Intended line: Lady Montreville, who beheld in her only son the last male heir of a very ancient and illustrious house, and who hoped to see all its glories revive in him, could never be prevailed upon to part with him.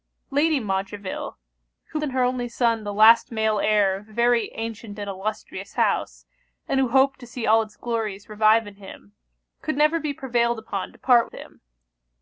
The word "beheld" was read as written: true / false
false